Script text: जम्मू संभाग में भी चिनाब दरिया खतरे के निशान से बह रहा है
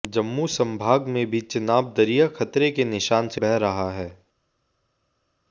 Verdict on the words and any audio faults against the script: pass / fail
pass